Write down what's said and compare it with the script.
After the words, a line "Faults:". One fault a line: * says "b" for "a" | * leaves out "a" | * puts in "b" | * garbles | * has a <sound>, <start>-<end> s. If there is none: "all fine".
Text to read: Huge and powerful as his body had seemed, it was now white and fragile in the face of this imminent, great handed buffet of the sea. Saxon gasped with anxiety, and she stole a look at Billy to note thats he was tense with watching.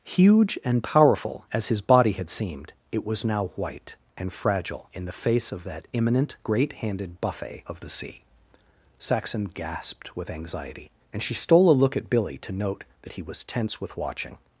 Huge and powerful as his body had seemed, it was now white and fragile in the face of that imminent, great handed buffet of the sea. Saxon gasped with anxiety, and she stole a look at Billy to note that he was tense with watching.
Faults:
* says "that" for "this"
* says "that" for "thats"